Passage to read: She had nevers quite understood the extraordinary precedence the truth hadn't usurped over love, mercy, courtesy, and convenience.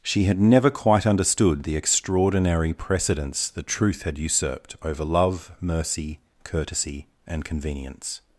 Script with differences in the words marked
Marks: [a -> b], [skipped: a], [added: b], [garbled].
She had [nevers -> never] quite understood the extraordinary precedence the truth [hadn't -> had] usurped over love, mercy, courtesy, and convenience.